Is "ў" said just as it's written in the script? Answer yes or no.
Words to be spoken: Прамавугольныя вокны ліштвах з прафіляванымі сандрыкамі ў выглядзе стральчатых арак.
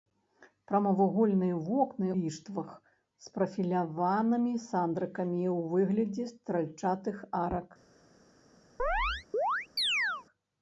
yes